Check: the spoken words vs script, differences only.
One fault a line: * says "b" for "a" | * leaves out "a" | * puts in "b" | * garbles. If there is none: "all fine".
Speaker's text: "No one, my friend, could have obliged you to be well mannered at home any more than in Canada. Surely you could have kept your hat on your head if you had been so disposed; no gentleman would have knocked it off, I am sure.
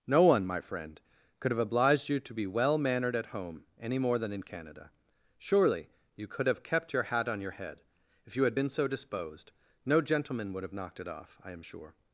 all fine